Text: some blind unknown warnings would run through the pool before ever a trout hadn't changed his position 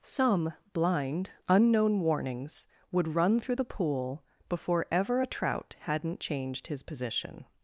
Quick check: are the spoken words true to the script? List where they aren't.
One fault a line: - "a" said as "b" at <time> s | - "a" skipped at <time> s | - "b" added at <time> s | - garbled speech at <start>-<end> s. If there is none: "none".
none